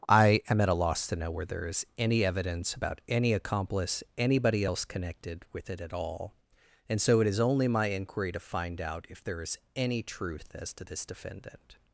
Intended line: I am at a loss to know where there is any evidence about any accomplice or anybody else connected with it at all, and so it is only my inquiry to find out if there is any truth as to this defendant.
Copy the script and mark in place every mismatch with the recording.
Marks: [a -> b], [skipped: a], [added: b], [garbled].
I am at a loss to know where there is any evidence about any accomplice [skipped: or] anybody else connected with it at all, and so it is only my inquiry to find out if there is any truth as to this defendant.